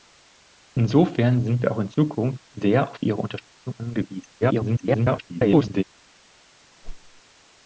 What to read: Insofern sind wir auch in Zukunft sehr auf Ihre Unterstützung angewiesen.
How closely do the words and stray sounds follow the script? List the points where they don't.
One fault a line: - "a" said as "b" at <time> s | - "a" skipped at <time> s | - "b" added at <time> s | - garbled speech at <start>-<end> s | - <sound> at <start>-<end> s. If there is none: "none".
- garbled speech at 4.4-5.8 s
- whoosh at 6.8-7.2 s